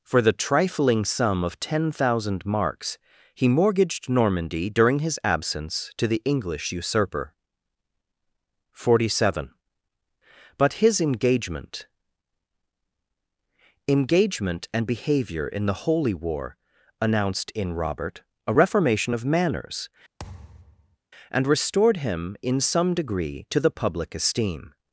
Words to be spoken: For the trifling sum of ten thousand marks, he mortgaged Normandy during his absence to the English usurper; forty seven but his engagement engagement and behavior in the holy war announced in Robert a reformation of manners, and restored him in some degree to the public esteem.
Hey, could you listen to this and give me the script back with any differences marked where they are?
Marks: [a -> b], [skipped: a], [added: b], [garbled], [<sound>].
For the trifling sum of ten thousand marks, he mortgaged Normandy during his absence to the English usurper; forty seven but his engagement engagement and behavior in the holy war announced in Robert a reformation of manners, [thud] and restored him in some degree to the public esteem.